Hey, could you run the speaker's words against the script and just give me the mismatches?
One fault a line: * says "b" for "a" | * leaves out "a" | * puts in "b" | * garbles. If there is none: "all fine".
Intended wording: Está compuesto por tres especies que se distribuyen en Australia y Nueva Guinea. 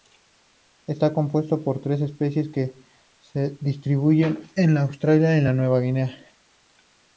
all fine